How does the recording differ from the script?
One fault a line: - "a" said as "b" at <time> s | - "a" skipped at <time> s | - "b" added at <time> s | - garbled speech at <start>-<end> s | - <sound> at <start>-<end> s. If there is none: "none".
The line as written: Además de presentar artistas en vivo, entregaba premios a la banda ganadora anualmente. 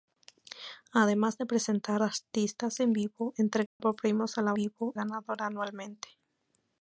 - dropout at 3.7-3.8 s
- "banda" said as "vivo" at 4.5 s